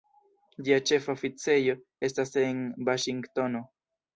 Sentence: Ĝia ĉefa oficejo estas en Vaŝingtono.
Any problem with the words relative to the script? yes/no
no